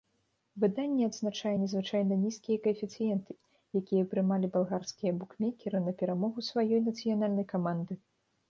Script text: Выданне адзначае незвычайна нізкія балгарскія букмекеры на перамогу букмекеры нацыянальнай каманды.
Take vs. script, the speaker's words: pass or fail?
fail